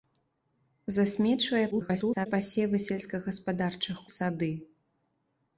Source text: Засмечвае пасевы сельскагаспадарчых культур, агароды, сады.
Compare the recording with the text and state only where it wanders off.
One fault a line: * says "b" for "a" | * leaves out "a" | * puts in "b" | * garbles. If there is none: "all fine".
* garbles
* leaves out "культур агароды"